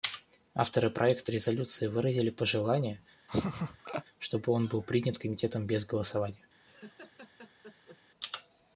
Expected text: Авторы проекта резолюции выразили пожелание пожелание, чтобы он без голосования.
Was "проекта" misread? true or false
false